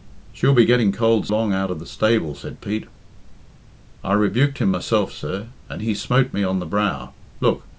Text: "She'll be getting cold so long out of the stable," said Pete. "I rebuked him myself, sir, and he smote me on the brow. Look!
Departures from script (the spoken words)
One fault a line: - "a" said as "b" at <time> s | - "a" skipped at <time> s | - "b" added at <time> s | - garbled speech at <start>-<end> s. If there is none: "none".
- "so" skipped at 1.3 s